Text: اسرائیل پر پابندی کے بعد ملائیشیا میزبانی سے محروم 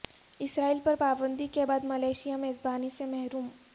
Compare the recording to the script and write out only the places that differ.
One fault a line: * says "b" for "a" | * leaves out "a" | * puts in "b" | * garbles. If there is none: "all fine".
all fine